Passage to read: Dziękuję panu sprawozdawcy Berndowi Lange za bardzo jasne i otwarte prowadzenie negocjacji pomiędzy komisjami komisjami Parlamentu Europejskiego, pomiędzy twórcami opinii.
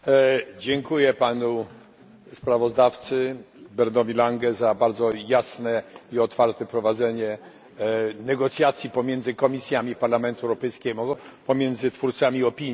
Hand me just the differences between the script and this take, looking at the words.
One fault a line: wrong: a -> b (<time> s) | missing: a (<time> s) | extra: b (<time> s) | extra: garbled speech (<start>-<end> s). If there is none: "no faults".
missing: komisjami (10.0 s)